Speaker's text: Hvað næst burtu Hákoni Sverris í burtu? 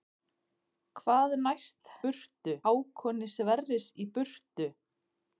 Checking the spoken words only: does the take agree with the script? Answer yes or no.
yes